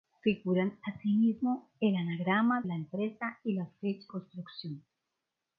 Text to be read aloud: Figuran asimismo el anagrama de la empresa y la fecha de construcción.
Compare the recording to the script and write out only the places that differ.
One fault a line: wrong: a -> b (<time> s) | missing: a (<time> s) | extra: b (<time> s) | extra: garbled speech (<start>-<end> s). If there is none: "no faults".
missing: de (2.6 s)
missing: de (4.1 s)